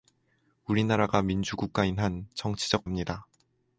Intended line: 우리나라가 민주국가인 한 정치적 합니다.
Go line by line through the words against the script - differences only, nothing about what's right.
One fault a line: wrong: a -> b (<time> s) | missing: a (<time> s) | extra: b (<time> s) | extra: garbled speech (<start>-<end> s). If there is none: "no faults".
no faults